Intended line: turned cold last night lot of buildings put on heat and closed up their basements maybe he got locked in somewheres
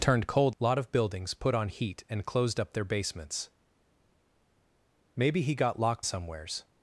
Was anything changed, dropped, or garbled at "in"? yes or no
yes